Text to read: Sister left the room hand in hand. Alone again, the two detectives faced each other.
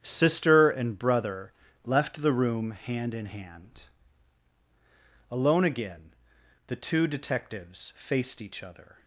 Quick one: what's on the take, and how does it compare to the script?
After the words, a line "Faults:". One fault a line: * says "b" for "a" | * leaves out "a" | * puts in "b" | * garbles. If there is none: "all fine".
Sister and brother left the room hand in hand. Alone again, the two detectives faced each other.
Faults:
* puts in "and brother"